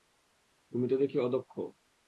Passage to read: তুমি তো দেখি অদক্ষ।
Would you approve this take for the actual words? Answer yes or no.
yes